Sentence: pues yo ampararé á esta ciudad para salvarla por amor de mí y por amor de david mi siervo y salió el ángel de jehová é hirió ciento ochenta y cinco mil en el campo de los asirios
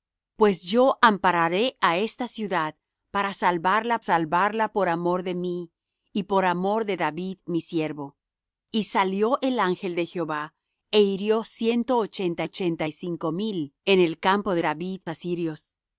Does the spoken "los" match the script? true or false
false